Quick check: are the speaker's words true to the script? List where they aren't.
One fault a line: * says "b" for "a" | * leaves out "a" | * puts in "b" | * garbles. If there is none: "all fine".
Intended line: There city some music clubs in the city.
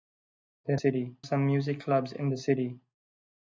all fine